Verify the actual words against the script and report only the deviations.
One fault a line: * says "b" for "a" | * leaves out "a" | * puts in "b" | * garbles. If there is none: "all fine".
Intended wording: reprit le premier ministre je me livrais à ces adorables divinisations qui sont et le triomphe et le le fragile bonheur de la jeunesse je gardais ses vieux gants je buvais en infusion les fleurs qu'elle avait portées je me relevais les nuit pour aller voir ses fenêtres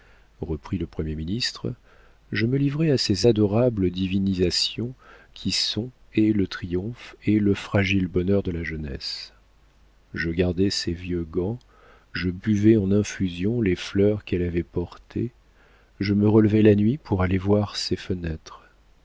* leaves out "le"
* says "la" for "les"